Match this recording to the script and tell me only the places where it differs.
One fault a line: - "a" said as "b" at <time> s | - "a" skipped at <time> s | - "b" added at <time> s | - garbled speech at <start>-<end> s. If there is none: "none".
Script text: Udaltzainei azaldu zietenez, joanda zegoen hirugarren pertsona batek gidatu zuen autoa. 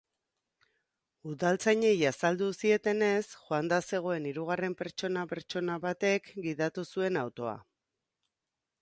- "pertsona" added at 5.3 s